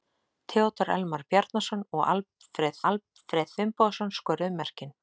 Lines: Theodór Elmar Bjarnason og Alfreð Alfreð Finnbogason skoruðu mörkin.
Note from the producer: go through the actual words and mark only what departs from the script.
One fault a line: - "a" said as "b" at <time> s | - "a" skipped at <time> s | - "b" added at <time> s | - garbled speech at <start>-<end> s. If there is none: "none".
none